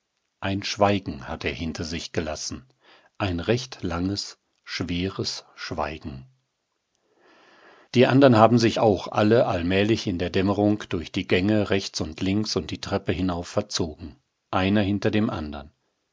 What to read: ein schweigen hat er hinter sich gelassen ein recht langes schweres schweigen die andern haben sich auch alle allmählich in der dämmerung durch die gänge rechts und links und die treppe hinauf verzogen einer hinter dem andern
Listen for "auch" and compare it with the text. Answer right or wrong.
right